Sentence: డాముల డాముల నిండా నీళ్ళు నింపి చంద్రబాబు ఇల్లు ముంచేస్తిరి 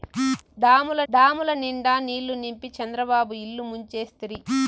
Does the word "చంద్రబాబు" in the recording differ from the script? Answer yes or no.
no